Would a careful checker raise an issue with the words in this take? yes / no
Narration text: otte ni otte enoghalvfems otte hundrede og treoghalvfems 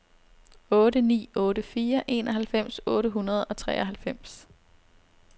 yes